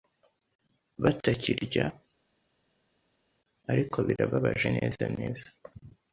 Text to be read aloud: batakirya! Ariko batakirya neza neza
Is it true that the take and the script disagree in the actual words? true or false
true